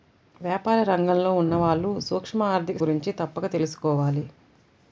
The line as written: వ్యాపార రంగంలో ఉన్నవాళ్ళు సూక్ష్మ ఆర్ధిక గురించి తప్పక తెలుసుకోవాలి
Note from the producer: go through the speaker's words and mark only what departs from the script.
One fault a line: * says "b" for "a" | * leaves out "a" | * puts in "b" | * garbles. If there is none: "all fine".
all fine